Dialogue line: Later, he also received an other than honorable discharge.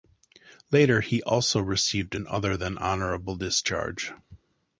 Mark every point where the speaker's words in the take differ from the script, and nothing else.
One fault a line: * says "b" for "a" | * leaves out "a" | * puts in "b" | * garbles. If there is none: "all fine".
all fine